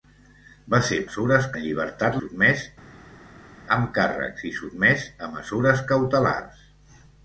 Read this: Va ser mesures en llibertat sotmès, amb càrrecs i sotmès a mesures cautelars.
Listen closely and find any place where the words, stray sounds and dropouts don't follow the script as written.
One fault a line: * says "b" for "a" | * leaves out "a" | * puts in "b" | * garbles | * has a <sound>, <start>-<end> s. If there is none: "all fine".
all fine